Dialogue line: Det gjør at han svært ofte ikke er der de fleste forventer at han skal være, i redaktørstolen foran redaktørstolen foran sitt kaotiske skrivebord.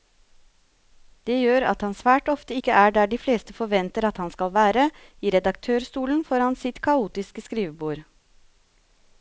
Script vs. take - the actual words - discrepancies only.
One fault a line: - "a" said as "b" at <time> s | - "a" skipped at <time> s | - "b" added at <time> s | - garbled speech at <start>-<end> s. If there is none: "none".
- "redaktørstolen foran" skipped at 6.6 s